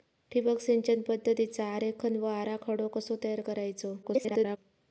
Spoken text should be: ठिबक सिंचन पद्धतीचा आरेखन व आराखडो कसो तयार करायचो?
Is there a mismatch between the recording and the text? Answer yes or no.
yes